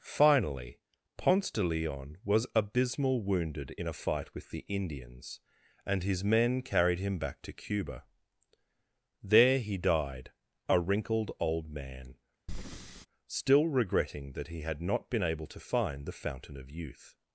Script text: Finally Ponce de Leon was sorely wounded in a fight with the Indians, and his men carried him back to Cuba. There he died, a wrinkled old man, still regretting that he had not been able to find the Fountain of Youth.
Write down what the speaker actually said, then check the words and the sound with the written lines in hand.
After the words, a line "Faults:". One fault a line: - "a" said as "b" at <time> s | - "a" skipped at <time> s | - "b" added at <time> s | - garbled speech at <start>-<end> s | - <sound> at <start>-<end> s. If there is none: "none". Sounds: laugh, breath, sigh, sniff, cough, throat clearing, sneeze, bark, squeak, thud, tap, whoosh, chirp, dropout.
Finally Ponce de Leon was abysmal wounded in a fight with the Indians, and his men carried him back to Cuba. There he died, a wrinkled old man, still regretting that he had not been able to find the Fountain of Youth.
Faults:
- "sorely" said as "abysmal" at 2.5 s
- breath at 12.5-13.1 s